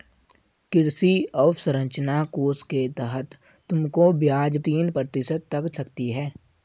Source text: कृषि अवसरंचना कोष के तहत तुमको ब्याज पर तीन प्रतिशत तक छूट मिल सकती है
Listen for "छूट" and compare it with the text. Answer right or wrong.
wrong